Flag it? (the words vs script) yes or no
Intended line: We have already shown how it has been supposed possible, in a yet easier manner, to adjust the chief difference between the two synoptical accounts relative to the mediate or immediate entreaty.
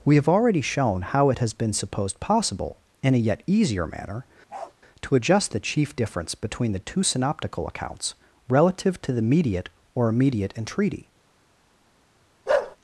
no